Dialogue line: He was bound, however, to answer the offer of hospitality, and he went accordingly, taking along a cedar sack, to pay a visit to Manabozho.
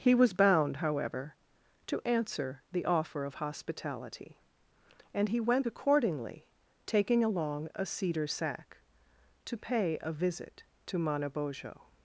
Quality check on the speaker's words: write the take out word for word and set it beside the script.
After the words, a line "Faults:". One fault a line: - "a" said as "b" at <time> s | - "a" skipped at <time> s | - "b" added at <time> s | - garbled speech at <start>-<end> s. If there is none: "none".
He was bound, however, to answer the offer of hospitality, and he went accordingly, taking along a cedar sack, to pay a visit to Manabozho.
Faults:
none